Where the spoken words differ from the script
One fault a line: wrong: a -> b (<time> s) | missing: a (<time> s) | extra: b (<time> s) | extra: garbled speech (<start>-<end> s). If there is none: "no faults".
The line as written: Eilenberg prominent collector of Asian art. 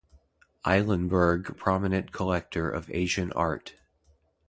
no faults